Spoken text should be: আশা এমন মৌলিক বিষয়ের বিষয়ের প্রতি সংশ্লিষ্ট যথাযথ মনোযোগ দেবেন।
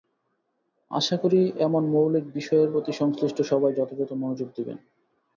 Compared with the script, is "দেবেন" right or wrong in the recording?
right